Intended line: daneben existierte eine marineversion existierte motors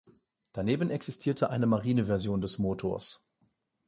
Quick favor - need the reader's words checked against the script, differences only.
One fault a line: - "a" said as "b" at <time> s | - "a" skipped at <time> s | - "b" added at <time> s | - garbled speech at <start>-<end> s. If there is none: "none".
- "existierte" said as "des" at 2.4 s